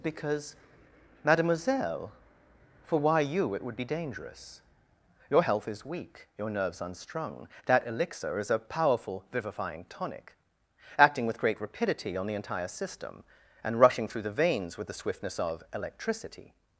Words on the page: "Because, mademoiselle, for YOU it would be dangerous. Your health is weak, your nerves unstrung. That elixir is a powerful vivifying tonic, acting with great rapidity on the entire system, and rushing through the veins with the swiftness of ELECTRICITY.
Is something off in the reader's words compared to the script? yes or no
yes